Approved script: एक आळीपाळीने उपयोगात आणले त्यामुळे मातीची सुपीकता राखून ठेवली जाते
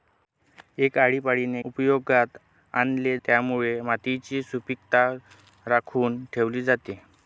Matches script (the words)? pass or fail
pass